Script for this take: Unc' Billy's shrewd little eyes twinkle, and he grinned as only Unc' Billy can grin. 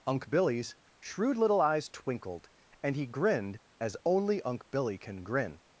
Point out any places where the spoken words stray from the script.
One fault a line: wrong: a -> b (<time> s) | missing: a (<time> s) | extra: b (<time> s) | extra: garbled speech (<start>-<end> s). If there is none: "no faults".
wrong: twinkle -> twinkled (1.9 s)